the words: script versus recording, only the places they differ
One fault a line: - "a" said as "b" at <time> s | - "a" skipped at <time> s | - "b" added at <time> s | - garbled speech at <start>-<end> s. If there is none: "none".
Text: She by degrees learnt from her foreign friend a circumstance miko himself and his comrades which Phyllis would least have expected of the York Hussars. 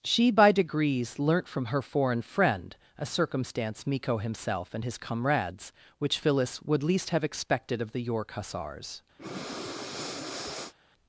none